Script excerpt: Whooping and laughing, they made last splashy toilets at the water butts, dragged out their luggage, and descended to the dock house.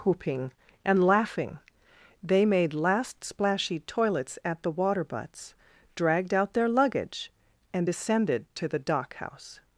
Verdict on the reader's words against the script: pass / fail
pass